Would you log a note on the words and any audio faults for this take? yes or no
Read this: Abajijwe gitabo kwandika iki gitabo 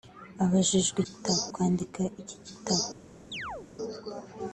yes